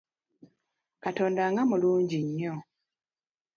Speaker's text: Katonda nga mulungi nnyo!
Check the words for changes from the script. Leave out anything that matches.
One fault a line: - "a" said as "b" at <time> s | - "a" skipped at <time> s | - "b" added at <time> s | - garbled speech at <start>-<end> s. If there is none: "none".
none